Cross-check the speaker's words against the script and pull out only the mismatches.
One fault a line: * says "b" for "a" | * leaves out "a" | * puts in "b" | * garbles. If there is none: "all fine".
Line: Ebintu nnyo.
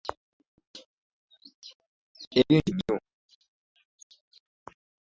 all fine